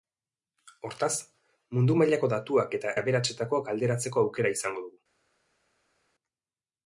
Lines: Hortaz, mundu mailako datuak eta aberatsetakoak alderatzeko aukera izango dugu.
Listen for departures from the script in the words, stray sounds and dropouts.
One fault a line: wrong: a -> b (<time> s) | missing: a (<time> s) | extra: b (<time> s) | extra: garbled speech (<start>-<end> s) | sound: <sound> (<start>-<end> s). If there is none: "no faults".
no faults